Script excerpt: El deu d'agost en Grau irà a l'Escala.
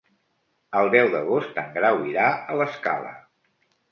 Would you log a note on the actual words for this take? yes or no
no